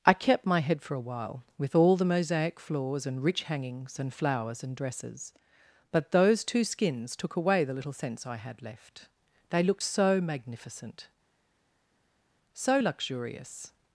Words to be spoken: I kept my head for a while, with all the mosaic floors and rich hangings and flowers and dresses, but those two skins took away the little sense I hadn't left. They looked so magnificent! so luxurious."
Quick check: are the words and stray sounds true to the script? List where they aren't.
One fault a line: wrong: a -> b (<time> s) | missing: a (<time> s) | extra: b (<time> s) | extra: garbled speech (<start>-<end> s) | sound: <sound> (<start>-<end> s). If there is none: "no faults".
wrong: hadn't -> had (8.4 s)